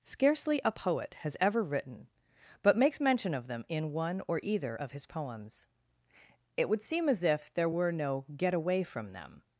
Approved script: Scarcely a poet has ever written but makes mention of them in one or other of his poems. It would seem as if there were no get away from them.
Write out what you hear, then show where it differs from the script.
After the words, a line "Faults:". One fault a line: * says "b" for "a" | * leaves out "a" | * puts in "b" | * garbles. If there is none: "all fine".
Scarcely a poet has ever written but makes mention of them in one or either of his poems. It would seem as if there were no get away from them.
Faults:
* says "either" for "other"